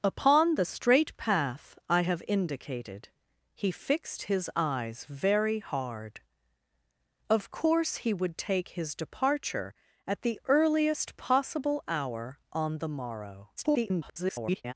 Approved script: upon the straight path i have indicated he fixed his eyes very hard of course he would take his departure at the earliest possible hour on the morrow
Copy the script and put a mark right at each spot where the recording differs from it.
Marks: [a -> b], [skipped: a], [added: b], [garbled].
upon the straight path i have indicated he fixed his eyes very hard of course he would take his departure at the earliest possible hour on the morrow [garbled]